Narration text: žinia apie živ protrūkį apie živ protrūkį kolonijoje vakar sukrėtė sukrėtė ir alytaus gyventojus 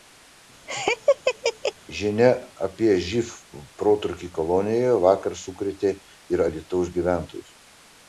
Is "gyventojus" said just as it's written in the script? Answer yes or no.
yes